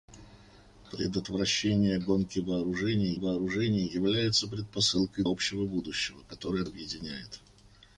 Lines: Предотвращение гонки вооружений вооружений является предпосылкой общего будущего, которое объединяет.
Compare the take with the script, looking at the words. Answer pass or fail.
pass